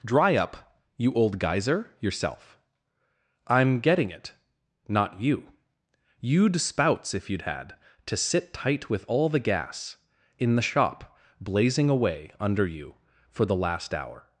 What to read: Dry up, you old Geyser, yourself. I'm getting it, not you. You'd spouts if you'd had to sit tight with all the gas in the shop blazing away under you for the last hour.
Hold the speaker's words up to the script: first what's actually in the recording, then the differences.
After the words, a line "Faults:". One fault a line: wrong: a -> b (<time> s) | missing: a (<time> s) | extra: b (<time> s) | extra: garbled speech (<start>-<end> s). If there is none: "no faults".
Dry up, you old Geyser, yourself. I'm getting it, not you. You'd spouts if you'd had to sit tight with all the gas in the shop blazing away under you for the last hour.
Faults:
no faults